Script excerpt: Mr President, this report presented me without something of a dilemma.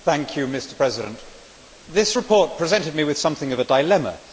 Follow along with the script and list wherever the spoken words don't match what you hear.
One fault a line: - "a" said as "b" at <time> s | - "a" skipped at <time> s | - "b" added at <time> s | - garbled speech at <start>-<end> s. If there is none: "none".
- "without" said as "with" at 3.0 s